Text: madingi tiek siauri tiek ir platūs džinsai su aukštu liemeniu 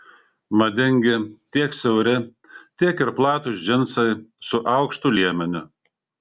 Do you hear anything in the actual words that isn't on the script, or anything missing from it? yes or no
no